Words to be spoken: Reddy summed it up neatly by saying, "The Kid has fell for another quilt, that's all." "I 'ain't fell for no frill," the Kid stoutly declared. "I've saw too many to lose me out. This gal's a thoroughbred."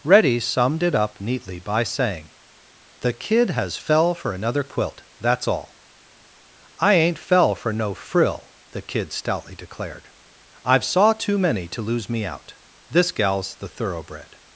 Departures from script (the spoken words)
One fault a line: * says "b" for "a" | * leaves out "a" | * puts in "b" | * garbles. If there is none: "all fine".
* says "the" for "a"